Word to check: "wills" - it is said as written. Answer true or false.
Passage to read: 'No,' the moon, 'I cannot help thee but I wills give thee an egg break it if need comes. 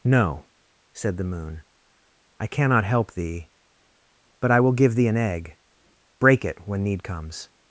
false